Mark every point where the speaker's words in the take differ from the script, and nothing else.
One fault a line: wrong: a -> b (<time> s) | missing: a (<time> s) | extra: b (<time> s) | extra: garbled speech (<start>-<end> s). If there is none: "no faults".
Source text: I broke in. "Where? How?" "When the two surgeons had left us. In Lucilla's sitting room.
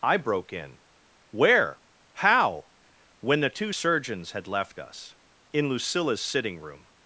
no faults